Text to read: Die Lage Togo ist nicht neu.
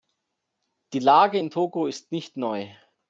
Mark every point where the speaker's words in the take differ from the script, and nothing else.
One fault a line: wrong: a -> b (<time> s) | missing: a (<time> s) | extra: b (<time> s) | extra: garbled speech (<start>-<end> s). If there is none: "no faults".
extra: in (1.4 s)